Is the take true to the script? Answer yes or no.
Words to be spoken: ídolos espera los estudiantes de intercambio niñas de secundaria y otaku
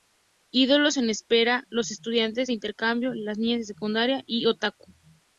no